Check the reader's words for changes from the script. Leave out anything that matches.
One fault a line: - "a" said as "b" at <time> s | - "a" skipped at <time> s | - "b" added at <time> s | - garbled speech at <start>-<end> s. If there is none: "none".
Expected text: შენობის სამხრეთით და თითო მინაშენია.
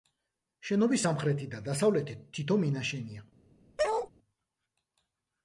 - "დასავლეთით" added at 1.6 s